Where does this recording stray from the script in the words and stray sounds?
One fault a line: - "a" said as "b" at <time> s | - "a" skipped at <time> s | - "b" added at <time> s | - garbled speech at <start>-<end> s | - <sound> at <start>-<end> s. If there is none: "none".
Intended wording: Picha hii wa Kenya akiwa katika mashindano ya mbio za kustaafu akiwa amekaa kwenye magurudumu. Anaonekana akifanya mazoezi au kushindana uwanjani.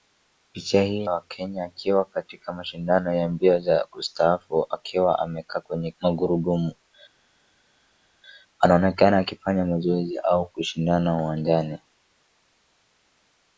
none